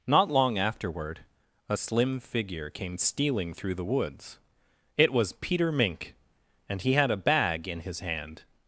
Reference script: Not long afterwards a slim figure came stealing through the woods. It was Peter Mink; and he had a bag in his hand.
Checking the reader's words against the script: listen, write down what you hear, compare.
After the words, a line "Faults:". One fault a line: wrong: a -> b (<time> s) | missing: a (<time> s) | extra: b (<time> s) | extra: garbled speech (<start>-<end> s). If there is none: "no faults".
Not long afterward a slim figure came stealing through the woods. It was Peter Mink; and he had a bag in his hand.
Faults:
wrong: afterwards -> afterward (0.6 s)